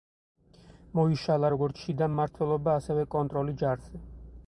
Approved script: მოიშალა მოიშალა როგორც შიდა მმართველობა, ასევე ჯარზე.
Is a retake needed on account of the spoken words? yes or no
yes